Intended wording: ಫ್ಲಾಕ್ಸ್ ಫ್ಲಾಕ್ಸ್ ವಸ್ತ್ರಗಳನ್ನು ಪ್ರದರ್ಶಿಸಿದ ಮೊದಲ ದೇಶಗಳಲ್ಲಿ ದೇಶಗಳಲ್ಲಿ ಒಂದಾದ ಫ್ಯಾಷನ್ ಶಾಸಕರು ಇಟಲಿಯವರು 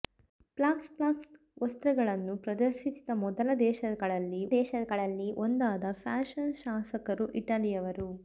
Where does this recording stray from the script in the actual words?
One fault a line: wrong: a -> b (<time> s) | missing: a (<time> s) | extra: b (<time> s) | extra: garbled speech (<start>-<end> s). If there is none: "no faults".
no faults